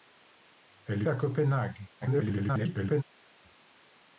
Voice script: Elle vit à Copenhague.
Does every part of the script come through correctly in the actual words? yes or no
no